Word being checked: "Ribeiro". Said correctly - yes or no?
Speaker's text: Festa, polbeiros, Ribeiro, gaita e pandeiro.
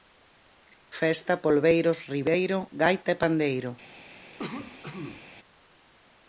yes